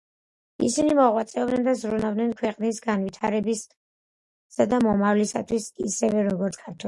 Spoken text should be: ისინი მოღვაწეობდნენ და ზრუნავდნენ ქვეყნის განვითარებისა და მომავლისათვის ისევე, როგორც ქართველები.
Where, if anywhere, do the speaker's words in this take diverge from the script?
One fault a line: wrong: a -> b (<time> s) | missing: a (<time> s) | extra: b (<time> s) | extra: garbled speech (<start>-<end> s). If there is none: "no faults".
no faults